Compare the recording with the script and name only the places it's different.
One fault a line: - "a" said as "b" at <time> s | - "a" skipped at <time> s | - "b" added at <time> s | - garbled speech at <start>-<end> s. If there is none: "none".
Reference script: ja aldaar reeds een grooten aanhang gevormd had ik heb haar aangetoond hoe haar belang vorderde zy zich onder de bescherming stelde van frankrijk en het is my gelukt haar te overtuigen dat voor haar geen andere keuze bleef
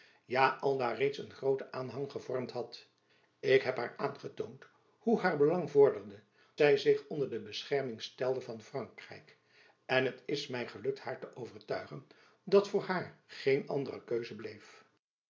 none